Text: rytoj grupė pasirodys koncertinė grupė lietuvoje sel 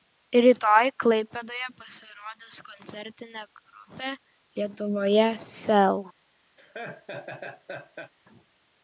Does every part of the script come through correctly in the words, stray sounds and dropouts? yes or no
no